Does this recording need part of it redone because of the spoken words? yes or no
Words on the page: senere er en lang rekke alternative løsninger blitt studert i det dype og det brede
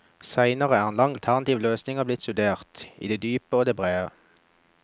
yes